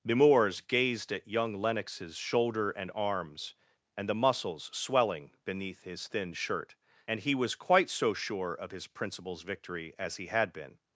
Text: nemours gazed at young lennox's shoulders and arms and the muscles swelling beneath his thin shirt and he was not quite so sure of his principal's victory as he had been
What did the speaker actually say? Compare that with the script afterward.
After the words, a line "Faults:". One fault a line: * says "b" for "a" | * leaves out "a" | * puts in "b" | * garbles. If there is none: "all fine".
nemours gazed at young lennox's shoulder and arms and the muscles swelling beneath his thin shirt and he was quite so sure of his principal's victory as he had been
Faults:
* says "shoulder" for "shoulders"
* leaves out "not"